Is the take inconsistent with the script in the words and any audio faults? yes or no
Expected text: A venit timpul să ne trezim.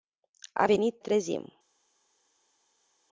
yes